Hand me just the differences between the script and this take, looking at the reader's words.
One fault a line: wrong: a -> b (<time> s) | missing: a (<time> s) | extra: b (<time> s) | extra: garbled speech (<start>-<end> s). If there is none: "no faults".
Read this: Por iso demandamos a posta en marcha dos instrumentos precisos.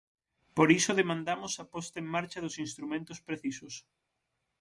no faults